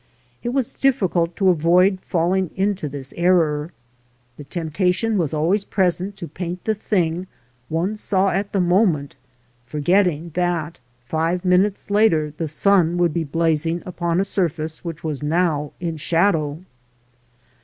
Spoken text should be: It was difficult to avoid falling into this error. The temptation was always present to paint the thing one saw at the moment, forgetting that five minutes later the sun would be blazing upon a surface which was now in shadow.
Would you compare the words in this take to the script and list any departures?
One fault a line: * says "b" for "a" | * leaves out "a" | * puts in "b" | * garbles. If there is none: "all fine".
all fine